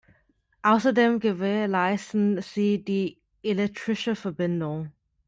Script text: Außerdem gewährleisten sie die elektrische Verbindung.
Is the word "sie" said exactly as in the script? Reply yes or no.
yes